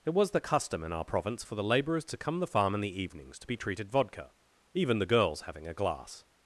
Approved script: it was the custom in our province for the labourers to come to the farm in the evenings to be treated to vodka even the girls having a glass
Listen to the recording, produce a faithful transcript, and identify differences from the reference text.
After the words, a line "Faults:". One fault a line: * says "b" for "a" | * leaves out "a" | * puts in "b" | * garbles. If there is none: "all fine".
it was the custom in our province for the labourers to come the farm in the evenings to be treated vodka even the girls having a glass
Faults:
* leaves out "to"
* leaves out "to"